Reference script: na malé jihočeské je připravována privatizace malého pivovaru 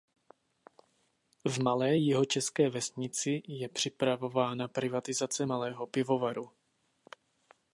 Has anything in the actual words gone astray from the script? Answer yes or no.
yes